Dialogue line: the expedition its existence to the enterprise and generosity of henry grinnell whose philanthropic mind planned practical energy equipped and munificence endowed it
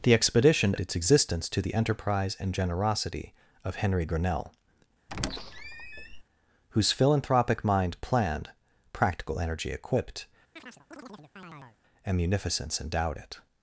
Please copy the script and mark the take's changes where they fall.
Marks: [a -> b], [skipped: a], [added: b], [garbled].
the expedition its existence to the enterprise and generosity of henry grinnell whose philanthropic mind planned practical energy equipped and munificence endowed it